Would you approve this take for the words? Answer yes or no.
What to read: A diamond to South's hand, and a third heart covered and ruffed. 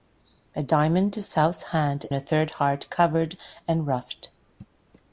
no